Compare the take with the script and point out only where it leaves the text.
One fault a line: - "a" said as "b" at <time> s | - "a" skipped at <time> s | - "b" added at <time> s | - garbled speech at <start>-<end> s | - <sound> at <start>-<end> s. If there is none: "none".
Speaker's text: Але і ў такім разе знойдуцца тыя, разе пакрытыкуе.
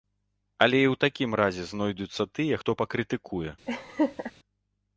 - "разе" said as "хто" at 2.6 s
- laugh at 3.7-4.3 s